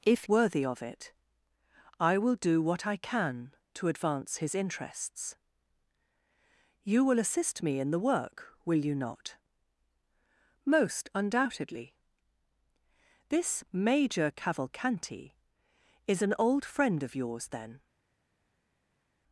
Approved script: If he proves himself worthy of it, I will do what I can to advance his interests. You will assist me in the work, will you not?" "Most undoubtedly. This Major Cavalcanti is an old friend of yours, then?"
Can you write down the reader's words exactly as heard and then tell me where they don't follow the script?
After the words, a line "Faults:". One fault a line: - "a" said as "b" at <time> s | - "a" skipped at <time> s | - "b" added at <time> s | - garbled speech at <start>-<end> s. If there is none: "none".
If worthy of it, I will do what I can to advance his interests. You will assist me in the work, will you not?" "Most undoubtedly. This Major Cavalcanti is an old friend of yours, then?"
Faults:
- "he proves himself" skipped at 0.2 s